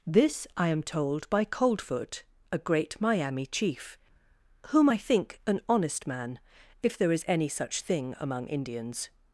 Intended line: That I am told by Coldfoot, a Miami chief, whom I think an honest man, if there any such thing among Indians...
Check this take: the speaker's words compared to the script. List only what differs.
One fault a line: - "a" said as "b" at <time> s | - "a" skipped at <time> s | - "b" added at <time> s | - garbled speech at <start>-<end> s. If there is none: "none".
- "That" said as "This" at 0.1 s
- "great" added at 2.6 s
- "is" added at 7.1 s